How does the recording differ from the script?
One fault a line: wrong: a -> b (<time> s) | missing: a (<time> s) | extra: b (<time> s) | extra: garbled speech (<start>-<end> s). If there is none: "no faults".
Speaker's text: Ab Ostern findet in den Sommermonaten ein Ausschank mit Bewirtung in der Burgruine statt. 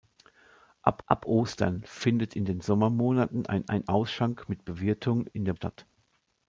extra: ab (1.1 s)
extra: ein (3.7 s)
missing: Burgruine (5.5 s)